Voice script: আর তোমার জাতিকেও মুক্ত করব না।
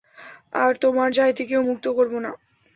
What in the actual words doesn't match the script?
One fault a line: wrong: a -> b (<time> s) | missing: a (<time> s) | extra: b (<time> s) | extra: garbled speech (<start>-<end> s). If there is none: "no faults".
no faults